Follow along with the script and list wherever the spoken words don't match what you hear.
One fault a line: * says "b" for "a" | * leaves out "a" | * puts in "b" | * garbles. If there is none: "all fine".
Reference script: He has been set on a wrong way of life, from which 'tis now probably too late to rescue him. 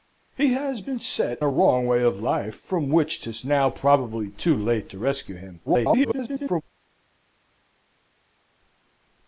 * leaves out "on"
* garbles